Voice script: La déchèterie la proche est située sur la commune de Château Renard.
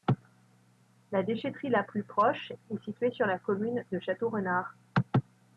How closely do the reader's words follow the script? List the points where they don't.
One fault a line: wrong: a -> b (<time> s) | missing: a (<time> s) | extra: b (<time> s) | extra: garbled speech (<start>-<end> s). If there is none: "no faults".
extra: plus (1.8 s)